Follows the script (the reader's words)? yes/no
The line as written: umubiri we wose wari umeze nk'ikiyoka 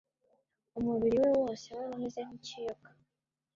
yes